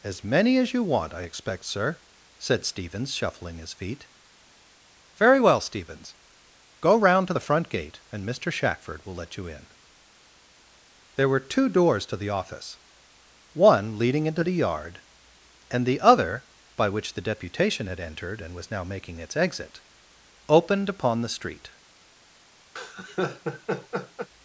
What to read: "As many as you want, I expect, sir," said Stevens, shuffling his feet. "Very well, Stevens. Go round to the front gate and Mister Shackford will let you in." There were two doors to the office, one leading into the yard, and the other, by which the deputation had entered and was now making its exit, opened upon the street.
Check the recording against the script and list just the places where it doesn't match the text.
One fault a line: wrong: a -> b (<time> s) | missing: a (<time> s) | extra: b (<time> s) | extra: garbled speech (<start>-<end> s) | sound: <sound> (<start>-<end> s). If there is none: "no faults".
sound: laugh (22.8-24.3 s)